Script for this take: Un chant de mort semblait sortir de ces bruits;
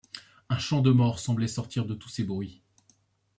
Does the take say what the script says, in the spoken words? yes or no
no